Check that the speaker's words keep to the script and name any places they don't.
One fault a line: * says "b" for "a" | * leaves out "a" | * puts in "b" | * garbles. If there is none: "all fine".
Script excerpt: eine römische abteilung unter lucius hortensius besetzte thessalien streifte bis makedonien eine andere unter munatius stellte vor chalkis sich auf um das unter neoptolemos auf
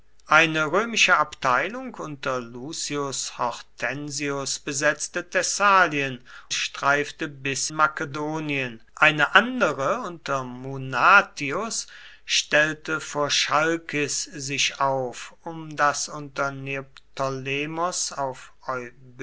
all fine